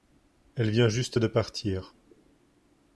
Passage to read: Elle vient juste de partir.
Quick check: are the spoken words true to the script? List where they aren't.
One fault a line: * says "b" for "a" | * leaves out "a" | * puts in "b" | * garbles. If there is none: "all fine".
all fine